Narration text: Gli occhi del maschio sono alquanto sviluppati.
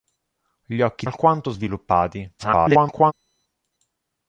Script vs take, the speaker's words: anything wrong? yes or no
yes